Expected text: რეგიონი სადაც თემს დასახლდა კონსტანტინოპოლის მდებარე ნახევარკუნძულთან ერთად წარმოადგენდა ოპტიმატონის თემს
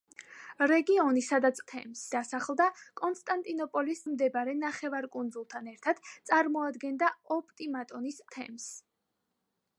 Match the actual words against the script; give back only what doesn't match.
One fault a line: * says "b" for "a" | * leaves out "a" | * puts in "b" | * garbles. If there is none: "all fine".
all fine